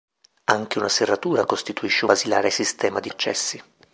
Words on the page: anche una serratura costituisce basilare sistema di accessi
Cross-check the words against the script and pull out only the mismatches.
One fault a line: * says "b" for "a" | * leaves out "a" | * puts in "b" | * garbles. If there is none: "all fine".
all fine